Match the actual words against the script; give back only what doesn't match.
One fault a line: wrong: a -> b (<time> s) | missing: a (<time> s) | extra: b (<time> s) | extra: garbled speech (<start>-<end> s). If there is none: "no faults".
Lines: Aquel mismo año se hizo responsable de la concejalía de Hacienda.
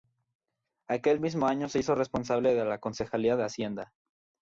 no faults